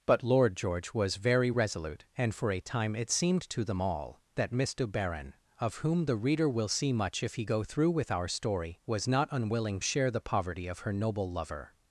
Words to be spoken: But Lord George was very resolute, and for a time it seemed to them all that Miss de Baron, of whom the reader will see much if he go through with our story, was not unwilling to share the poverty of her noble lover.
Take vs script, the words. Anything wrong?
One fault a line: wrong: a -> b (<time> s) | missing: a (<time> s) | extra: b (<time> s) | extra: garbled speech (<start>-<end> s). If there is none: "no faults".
missing: to (9.8 s)